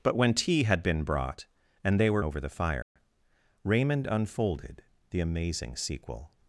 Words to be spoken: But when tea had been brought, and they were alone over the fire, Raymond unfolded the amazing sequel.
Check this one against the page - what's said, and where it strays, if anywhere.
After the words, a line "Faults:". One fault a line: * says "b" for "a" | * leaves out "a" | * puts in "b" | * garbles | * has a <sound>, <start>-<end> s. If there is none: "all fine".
But when tea had been brought, and they were over the fire, Raymond unfolded the amazing sequel.
Faults:
* leaves out "alone"
* has a dropout, 2.8-3.0 s